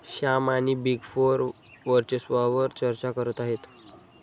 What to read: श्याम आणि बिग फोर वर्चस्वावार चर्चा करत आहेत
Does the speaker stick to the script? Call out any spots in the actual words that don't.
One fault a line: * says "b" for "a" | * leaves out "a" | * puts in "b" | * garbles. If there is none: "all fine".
all fine